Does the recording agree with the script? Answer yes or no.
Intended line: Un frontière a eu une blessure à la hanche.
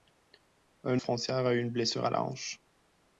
yes